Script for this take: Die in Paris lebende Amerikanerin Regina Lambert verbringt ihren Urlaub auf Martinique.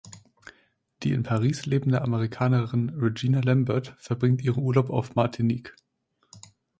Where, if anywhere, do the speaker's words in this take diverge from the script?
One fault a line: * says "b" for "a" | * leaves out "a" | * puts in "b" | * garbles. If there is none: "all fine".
all fine